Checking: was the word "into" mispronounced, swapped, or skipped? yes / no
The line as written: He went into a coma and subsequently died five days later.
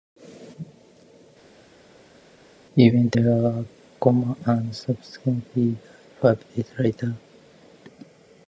yes